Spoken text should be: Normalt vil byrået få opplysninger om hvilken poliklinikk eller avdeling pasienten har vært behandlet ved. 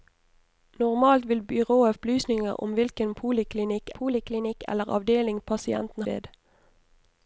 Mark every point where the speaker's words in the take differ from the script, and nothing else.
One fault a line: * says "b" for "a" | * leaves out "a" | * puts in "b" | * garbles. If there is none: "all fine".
* leaves out "få"
* puts in "poliklinikk"
* leaves out "har vært behandlet"